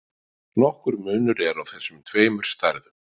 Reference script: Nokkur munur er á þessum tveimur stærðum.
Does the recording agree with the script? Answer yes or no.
yes